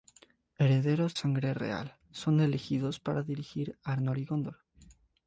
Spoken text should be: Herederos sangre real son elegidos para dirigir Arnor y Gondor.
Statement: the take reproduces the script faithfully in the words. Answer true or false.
true